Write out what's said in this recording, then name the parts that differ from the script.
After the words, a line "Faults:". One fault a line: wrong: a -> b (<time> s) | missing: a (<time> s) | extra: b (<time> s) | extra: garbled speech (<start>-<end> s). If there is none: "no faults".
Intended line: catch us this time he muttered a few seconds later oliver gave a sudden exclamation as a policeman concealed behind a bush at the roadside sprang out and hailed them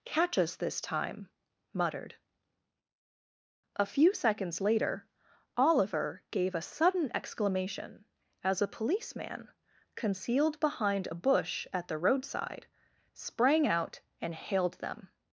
catch us this time muttered a few seconds later oliver gave a sudden exclamation as a policeman concealed behind a bush at the roadside sprang out and hailed them
Faults:
missing: he (1.3 s)